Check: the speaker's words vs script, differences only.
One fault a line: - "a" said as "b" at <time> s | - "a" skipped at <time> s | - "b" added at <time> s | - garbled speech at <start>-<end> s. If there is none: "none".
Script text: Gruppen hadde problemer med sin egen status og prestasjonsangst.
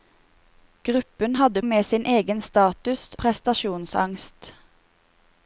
- "problemer" skipped at 1.6 s
- "og" skipped at 3.1 s